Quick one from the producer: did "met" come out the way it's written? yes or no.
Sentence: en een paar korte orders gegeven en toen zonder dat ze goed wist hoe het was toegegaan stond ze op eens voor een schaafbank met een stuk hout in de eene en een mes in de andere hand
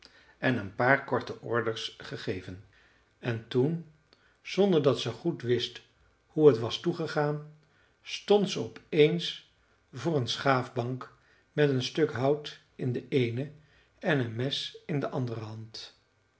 yes